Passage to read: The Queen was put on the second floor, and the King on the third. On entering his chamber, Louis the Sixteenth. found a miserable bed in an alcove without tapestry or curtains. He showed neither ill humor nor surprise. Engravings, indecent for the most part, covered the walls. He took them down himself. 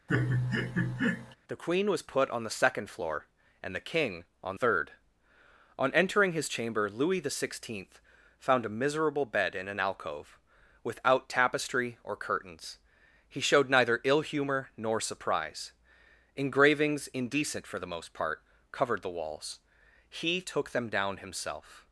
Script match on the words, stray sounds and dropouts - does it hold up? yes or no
no